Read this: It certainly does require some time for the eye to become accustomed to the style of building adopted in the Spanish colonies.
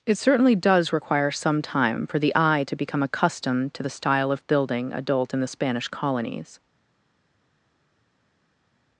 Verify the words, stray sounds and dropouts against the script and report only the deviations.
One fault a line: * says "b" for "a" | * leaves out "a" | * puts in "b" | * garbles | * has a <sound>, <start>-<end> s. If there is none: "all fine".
* says "adult" for "adopted"